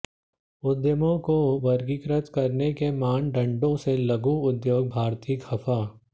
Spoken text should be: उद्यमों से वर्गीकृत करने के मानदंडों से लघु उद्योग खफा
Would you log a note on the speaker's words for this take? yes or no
yes